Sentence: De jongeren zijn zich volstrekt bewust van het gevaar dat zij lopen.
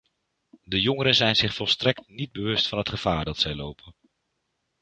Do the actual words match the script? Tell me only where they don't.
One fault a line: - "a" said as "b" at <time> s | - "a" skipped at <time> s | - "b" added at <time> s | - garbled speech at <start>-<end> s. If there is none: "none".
- "niet" added at 2.1 s